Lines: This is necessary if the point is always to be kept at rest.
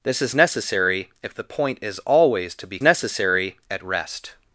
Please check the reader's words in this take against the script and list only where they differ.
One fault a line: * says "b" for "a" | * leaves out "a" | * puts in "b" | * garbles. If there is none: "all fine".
* says "necessary" for "kept"